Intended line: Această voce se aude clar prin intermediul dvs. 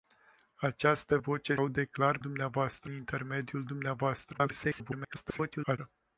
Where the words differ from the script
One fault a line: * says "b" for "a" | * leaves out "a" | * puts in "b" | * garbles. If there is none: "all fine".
* leaves out "se"
* says "dvs" for "prin"
* garbles